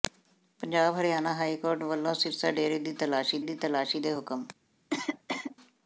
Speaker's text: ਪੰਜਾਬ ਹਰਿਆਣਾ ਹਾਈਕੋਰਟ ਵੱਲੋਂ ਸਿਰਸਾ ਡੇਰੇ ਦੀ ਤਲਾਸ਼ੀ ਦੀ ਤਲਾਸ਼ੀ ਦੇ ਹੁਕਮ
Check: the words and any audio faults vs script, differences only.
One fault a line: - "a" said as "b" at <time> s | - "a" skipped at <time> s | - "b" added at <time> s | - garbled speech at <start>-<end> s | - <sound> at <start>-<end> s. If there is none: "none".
- cough at 4.9-5.6 s